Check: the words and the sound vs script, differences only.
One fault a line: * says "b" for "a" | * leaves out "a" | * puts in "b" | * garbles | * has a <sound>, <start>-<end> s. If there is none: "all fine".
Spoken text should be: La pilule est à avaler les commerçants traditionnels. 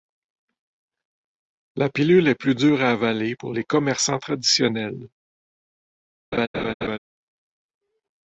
* puts in "plus dure"
* puts in "pour"
* has a laugh, 6.3-7.0 s